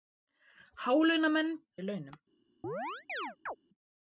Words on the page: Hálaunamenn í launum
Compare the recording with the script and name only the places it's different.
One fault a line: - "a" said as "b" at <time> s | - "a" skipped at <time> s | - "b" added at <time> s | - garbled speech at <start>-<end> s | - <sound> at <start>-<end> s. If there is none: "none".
- chirp at 2.6-3.6 s